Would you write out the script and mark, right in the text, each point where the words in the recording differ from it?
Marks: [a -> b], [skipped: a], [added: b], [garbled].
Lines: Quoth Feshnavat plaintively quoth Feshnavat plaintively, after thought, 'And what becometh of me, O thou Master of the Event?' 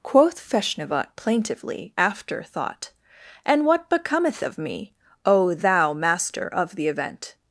Quoth Feshnavat plaintively [skipped: quoth Feshnavat plaintively,] after thought, 'And what becometh of me, O thou Master of the Event?'